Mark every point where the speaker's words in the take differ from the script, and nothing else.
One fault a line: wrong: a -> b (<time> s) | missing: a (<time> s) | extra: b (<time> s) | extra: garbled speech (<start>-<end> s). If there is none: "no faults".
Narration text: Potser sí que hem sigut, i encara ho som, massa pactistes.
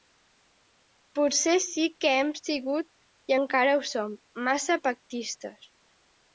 no faults